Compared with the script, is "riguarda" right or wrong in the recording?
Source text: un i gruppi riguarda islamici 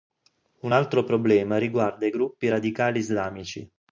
wrong